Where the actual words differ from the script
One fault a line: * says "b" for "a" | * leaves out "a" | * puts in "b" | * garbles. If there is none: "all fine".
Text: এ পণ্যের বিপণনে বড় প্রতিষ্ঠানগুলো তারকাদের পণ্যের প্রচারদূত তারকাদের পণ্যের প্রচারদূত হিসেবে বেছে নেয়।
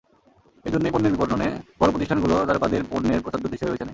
* puts in "জন্যই"
* leaves out "তারকাদের পণ্যের প্রচারদূত"